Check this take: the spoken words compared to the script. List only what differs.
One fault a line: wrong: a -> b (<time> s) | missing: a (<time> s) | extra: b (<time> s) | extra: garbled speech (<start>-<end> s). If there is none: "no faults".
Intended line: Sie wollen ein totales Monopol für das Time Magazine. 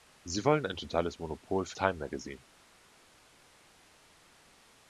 missing: das (1.8 s)